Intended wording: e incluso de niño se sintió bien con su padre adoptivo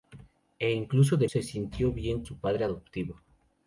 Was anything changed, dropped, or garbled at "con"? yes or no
yes